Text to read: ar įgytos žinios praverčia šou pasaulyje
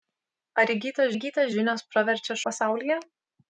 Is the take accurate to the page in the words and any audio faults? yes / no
no